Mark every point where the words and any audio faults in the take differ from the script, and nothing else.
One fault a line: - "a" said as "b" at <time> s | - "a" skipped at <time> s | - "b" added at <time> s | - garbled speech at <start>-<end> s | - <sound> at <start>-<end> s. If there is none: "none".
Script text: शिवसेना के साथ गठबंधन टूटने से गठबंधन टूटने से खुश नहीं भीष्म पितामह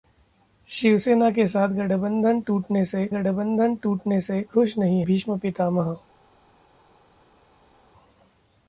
none